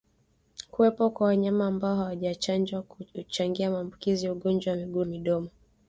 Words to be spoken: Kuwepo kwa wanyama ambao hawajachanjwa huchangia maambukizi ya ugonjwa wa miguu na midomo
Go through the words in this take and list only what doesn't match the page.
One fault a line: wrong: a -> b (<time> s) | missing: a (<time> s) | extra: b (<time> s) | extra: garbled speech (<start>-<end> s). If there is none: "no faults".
missing: na (5.0 s)